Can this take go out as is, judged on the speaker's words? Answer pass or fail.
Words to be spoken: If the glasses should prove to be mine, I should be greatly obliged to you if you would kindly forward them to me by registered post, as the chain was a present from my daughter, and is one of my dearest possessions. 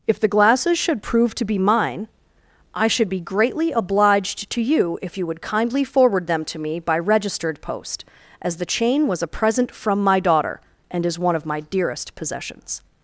pass